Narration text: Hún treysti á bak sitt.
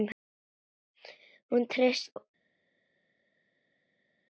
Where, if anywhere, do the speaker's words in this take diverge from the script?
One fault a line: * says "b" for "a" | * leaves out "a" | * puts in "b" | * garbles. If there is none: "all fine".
* leaves out "á"